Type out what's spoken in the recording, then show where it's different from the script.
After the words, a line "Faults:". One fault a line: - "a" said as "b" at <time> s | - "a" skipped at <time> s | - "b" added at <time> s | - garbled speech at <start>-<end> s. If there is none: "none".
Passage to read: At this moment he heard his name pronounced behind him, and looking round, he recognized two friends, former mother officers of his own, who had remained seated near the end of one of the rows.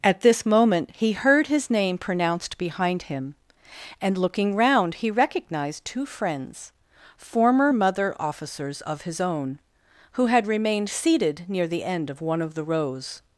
At this moment he heard his name pronounced behind him, and looking round, he recognized two friends, former mother officers of his own, who had remained seated near the end of one of the rows.
Faults:
none